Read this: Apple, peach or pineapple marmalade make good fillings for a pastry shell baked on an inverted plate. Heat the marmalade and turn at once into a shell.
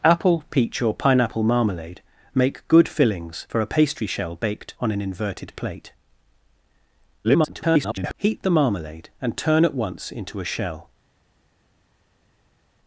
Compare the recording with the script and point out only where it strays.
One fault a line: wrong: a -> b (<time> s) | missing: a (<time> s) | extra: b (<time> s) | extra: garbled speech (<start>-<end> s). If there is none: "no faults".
extra: garbled speech (7.2-8.1 s)